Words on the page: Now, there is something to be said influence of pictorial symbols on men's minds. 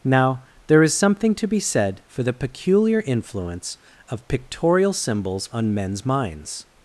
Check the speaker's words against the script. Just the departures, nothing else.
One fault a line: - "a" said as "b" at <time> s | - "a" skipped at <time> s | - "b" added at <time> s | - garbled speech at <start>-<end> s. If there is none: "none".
- "for the peculiar" added at 2.1 s